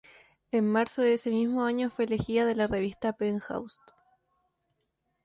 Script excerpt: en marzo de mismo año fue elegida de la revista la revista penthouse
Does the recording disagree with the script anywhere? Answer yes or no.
yes